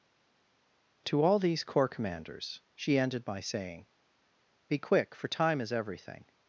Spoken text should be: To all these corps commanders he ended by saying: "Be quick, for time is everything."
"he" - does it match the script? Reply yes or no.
no